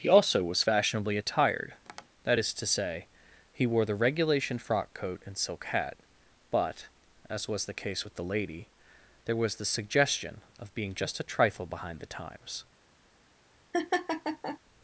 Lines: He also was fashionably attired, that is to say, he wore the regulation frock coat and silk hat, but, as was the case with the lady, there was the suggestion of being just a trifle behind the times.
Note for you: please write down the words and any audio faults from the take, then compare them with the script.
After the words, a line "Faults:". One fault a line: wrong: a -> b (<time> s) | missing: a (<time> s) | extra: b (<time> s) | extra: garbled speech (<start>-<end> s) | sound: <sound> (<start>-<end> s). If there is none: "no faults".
He also was fashionably attired, that is to say, he wore the regulation frock coat and silk hat, but, as was the case with the lady, there was the suggestion of being just a trifle behind the times.
Faults:
sound: tap (1.9-2.1 s)
sound: laugh (13.7-14.6 s)